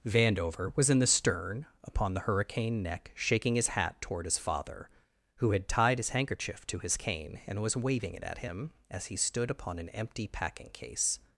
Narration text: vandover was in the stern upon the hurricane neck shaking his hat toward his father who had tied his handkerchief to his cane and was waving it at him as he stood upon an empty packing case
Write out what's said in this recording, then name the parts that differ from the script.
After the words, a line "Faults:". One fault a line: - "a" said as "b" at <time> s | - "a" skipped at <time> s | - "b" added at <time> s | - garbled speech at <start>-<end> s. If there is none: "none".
vandover was in the stern upon the hurricane neck shaking his hat toward his father who had tied his handkerchief to his cane and was waving it at him as he stood upon an empty packing case
Faults:
none